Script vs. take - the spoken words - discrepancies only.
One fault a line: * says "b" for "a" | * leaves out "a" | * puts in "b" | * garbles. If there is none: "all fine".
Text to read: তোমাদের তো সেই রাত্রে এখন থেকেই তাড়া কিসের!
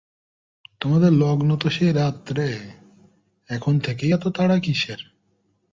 * puts in "লগ্ন"
* puts in "এত"